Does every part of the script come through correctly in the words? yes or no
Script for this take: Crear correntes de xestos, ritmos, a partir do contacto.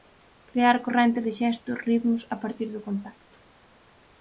yes